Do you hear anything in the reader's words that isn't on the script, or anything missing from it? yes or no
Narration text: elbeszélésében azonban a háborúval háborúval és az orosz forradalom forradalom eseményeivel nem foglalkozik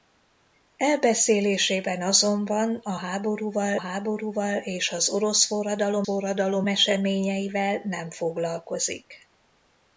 no